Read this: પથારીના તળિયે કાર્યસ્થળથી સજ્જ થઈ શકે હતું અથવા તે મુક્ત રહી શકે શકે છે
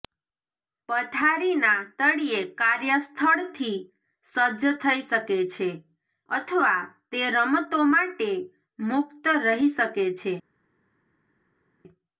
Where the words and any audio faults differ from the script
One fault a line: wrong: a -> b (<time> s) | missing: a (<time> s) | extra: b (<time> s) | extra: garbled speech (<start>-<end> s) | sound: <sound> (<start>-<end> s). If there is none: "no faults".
wrong: હતું -> છે (5.5 s)
extra: રમતો માટે (7.3 s)
missing: શકે (9.9 s)